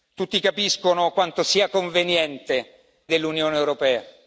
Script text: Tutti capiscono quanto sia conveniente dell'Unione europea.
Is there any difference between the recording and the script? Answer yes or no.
no